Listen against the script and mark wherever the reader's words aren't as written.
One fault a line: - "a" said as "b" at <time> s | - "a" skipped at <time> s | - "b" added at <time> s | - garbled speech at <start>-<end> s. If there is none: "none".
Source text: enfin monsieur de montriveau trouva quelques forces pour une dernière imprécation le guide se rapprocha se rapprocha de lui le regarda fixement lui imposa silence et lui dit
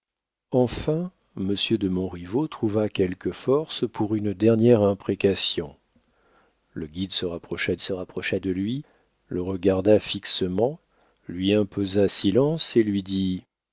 none